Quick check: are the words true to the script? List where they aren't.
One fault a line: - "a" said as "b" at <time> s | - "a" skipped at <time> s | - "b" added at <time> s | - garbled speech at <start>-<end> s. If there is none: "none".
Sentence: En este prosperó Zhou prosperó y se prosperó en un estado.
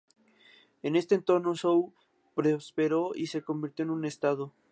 - "prosperó" said as "entorno" at 1.1 s
- "prosperó" said as "convirtió" at 3.4 s